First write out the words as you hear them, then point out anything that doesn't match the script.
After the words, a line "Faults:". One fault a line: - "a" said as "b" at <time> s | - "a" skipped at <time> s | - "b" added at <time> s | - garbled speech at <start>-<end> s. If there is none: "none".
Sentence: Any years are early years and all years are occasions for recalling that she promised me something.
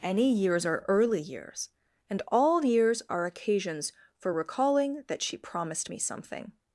Any years are early years and all years are occasions for recalling that she promised me something.
Faults:
none